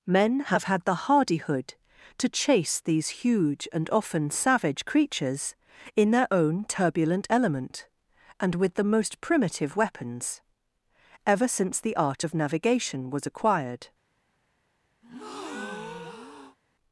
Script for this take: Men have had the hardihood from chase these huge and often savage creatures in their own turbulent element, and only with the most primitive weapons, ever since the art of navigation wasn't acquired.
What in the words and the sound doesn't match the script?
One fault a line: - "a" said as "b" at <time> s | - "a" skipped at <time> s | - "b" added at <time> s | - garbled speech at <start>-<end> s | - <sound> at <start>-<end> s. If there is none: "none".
- "from" said as "to" at 2.2 s
- "only" skipped at 8.6 s
- "wasn't" said as "was" at 13.1 s
- breath at 15.0-16.6 s